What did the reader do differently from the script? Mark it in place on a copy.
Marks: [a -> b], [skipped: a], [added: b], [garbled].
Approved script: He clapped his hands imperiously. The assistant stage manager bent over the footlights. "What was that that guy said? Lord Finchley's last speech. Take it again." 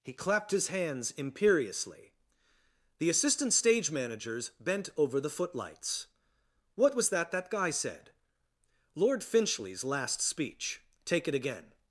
He clapped his hands imperiously. The assistant stage [manager -> managers] bent over the footlights. "What was that that guy said? Lord Finchley's last speech. Take it again."